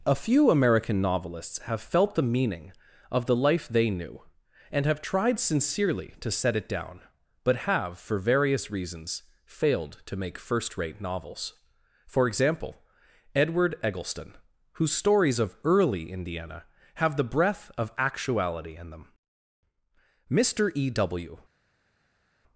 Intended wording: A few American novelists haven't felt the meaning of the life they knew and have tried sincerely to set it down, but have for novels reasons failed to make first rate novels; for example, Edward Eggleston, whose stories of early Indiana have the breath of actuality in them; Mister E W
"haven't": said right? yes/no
no